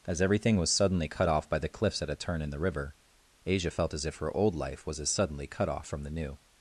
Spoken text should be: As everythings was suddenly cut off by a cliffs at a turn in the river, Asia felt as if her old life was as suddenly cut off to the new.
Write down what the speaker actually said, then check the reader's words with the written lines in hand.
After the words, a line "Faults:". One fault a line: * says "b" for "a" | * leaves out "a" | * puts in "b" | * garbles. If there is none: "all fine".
As everything was suddenly cut off by the cliffs at a turn in the river, Asia felt as if her old life was as suddenly cut off from the new.
Faults:
* says "everything" for "everythings"
* says "the" for "a"
* says "from" for "to"